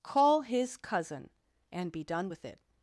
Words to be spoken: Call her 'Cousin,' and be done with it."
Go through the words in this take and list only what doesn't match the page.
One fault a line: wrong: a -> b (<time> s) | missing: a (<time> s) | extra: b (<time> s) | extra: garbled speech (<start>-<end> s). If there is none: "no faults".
wrong: her -> his (0.4 s)